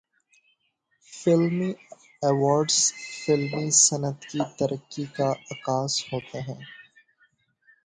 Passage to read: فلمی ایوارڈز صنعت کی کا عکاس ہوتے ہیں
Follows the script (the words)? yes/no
no